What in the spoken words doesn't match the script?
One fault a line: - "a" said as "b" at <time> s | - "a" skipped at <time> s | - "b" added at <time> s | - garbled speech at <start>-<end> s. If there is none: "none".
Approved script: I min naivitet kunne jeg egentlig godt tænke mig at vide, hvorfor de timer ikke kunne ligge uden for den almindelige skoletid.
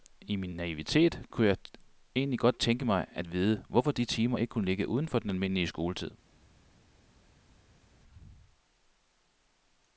none